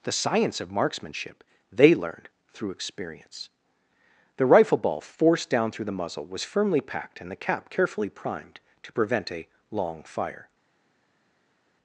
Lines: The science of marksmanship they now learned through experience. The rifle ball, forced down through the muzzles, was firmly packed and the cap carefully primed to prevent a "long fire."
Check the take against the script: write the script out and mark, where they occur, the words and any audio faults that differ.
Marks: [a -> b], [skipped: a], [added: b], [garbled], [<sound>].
The science of marksmanship they [skipped: now] learned through experience. The rifle ball, forced down through the [muzzles, -> muzzle] was firmly packed and the cap carefully primed to prevent a "long fire."